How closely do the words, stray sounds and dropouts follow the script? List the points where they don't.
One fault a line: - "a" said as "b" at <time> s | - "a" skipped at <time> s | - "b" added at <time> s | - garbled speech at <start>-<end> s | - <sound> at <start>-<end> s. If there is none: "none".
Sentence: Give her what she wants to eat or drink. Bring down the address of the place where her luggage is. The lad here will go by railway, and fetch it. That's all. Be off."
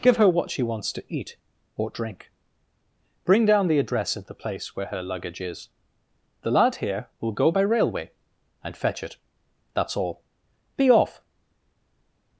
none